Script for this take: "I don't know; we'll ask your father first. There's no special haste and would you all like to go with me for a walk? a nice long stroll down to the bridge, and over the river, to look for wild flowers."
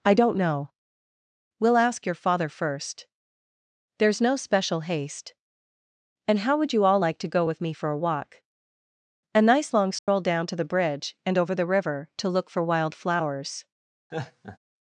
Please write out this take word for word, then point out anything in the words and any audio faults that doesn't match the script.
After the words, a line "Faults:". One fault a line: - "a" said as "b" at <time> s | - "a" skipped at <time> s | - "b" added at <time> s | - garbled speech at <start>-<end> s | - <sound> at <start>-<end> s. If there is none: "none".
"I don't know; we'll ask your father first. There's no special haste and how would you all like to go with me for a walk? a nice long stroll down to the bridge, and over the river, to look for wild flowers."
Faults:
- "how" added at 6.4 s
- dropout at 10.0-10.1 s
- laugh at 14.1-14.6 s